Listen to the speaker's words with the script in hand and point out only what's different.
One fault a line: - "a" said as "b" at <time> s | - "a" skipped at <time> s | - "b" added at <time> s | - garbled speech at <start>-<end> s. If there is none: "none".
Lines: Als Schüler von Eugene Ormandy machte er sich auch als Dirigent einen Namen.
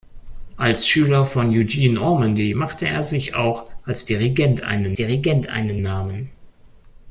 - "Dirigent einen" added at 4.9 s